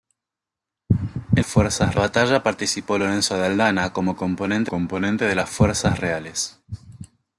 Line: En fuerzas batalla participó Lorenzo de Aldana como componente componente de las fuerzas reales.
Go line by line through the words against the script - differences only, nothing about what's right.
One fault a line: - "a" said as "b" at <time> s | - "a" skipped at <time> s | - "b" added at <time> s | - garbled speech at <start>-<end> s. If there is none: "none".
none